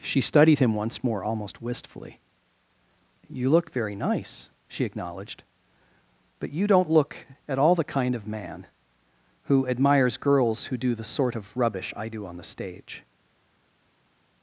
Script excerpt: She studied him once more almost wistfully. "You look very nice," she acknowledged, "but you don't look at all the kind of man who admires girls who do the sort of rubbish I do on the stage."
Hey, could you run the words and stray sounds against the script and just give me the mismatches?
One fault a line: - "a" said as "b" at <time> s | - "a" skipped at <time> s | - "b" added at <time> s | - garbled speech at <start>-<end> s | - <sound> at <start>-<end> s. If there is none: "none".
none